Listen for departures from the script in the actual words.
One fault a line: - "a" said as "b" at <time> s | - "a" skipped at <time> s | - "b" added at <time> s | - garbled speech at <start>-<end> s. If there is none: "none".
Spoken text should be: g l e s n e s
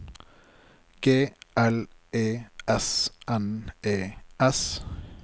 none